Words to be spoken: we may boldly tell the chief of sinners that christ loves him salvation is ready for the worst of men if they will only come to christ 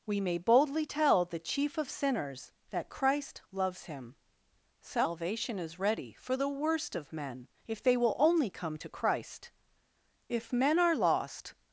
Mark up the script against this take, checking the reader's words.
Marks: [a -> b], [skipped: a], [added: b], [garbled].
we may boldly tell the chief of sinners that christ loves him salvation is ready for the worst of men if they will only come to christ [added: if men are lost]